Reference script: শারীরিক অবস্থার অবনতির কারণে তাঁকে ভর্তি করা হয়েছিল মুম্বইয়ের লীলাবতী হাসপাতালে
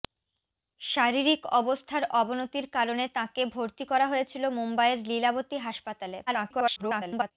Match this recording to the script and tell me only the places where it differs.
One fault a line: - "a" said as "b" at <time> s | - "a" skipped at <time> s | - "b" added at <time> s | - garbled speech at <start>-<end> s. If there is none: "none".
- garbled speech at 6.3-7.3 s